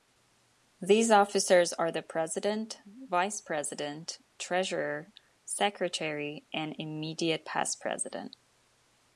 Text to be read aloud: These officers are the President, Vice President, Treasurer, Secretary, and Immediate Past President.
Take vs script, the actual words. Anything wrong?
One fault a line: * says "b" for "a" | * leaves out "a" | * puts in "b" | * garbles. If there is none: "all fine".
all fine